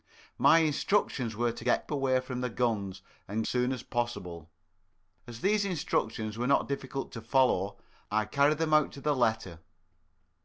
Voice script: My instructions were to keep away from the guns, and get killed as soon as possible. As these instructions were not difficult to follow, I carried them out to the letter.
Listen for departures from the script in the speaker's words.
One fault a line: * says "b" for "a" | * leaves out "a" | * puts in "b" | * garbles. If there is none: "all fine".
* says "get" for "keep"
* leaves out "get killed as"